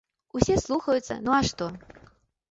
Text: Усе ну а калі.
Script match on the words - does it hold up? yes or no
no